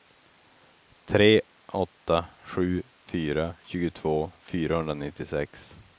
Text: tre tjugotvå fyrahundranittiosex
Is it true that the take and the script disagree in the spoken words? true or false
true